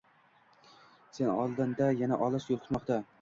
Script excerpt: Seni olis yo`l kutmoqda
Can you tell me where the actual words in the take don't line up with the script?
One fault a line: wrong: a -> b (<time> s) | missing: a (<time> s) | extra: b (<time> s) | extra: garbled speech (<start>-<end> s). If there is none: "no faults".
extra: oldinda yana (1.4 s)